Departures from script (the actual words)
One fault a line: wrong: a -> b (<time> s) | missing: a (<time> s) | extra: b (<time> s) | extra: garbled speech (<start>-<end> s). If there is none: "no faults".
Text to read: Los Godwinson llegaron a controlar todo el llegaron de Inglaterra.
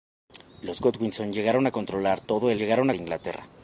no faults